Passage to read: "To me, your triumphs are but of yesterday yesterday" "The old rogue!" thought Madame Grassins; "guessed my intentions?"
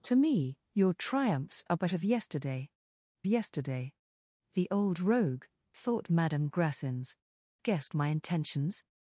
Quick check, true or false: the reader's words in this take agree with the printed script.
true